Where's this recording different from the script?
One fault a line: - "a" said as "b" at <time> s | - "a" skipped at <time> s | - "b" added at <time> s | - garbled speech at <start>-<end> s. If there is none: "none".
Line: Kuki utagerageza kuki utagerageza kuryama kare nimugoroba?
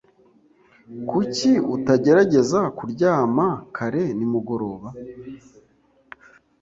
- "kuki utagerageza" skipped at 2.6 s